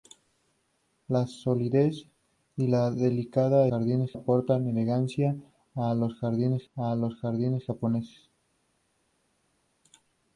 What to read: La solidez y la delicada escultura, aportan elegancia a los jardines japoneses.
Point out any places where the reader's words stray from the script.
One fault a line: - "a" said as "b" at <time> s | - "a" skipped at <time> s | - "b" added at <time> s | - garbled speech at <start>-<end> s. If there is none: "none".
- "escultura" said as "jardines" at 3.7 s
- "a los jardines" added at 6.7 s